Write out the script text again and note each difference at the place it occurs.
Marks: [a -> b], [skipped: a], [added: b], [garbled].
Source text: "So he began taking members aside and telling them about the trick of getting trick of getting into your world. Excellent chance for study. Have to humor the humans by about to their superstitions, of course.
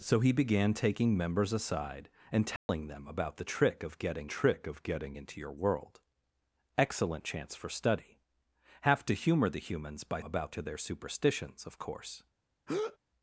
"So he began taking members aside and telling them about the trick of getting trick of getting into your world. Excellent chance for study. Have to humor the humans by about to their superstitions, of course.